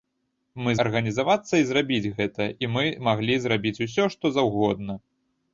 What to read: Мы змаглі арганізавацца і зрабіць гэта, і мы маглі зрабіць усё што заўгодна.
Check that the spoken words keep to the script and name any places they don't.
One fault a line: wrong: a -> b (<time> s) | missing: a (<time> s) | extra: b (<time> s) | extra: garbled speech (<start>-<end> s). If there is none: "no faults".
missing: змаглі (0.7 s)